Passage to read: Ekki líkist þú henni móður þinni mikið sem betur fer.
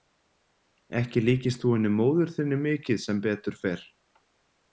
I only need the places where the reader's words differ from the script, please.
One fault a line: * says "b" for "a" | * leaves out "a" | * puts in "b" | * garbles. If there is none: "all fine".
all fine